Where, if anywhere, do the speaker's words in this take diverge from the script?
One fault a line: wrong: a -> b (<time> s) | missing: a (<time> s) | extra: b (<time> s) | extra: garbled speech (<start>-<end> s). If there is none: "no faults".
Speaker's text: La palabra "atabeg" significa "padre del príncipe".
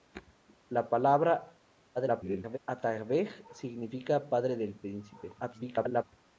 extra: garbled speech (1.9-2.6 s)
extra: garbled speech (5.4-6.0 s)